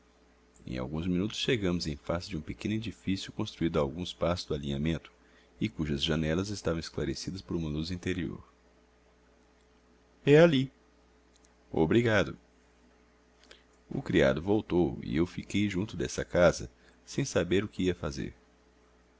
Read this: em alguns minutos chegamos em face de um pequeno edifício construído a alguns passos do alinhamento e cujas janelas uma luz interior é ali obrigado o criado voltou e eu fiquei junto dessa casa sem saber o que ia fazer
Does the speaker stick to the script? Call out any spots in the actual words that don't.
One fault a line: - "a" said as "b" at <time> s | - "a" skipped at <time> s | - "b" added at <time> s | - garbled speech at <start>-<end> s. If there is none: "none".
- "estavam esclarecidas por" added at 6.5 s